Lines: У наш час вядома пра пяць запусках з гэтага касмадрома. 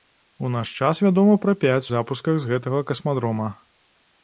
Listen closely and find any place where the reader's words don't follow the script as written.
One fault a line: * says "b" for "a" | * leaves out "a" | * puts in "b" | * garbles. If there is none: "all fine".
all fine